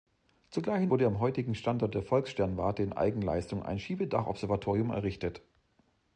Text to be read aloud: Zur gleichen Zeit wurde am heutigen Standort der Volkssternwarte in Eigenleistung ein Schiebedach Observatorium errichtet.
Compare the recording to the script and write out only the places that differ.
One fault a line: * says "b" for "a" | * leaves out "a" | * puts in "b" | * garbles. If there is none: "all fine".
* leaves out "Zeit"